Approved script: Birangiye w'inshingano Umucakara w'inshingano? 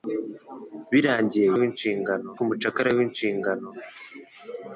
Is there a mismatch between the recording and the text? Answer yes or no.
no